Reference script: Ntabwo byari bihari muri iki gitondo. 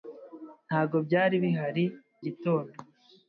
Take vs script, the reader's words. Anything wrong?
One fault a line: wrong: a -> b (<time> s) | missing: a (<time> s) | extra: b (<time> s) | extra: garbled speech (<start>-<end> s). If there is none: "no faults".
missing: muri iki (1.9 s)